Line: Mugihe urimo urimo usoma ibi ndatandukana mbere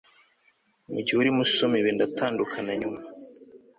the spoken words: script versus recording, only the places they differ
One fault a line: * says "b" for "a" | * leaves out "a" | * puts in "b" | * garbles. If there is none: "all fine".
* leaves out "urimo"
* says "nyuma" for "mbere"